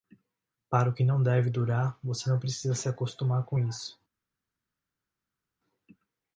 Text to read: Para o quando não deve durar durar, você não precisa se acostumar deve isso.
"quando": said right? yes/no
no